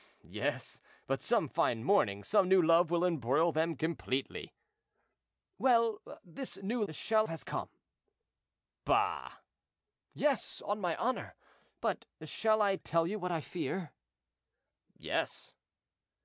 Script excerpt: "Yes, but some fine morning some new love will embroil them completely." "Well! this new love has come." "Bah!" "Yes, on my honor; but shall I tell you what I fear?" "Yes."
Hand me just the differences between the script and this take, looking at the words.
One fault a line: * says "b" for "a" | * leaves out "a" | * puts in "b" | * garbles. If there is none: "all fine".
* says "shall" for "love"